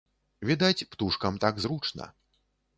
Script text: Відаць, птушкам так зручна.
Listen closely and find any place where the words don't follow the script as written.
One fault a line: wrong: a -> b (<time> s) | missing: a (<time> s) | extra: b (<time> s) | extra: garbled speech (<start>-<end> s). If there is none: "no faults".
no faults